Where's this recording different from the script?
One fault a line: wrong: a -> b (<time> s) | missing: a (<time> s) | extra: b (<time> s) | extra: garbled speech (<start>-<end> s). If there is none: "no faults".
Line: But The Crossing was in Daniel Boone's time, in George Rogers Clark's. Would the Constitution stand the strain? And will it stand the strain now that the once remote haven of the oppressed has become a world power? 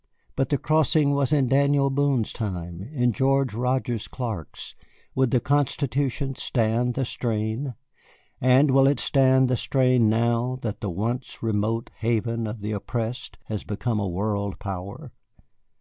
no faults